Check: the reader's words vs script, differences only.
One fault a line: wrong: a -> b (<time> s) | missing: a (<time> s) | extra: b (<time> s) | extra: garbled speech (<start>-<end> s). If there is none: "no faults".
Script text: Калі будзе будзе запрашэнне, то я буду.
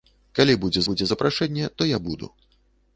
no faults